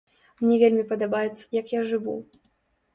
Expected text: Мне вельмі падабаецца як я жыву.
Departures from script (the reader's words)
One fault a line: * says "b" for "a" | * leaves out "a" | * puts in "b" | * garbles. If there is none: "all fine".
all fine